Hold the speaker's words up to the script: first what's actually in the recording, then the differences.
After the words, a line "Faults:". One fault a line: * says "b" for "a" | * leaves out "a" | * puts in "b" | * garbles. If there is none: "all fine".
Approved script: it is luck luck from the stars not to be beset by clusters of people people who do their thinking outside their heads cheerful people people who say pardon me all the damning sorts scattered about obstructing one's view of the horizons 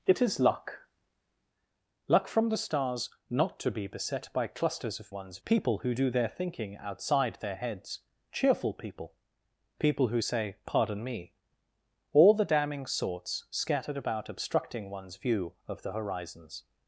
it is luck luck from the stars not to be beset by clusters of one's people who do their thinking outside their heads cheerful people people who say pardon me all the damning sorts scattered about obstructing one's view of the horizons
Faults:
* says "one's" for "people"